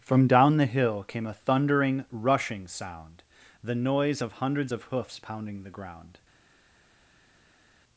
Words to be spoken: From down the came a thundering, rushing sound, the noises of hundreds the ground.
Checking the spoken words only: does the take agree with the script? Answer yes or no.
no